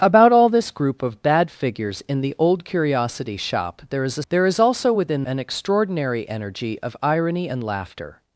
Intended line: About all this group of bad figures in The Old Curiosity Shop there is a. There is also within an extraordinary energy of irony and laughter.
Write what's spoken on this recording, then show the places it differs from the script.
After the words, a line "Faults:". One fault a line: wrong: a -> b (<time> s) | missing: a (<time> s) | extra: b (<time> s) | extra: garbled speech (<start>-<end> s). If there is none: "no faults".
About all this group of bad figures in The Old Curiosity Shop there is a. There is also within an extraordinary energy of irony and laughter.
Faults:
no faults